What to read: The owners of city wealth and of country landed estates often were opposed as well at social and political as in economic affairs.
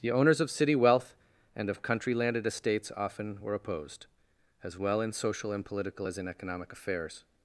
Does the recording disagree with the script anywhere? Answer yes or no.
yes